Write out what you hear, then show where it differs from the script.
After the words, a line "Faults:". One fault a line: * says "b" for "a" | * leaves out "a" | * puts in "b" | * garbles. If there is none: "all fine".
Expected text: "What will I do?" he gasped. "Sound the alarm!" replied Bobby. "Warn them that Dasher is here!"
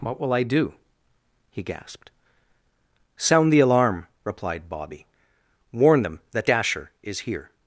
"What will I do?" he gasped. "Sound the alarm!" replied Bobby. "Warn them that Dasher is here!"
Faults:
all fine